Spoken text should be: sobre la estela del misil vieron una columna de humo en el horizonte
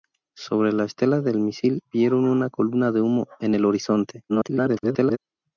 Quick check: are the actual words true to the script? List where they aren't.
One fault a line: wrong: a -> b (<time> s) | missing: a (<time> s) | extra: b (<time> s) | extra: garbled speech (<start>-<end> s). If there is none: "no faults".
extra: garbled speech (4.3-5.2 s)